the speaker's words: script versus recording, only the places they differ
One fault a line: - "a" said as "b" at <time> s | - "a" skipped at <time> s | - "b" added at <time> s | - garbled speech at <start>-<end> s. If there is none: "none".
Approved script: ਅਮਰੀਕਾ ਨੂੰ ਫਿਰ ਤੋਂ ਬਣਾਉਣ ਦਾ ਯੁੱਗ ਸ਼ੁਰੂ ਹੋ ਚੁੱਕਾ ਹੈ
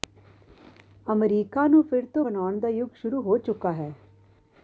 none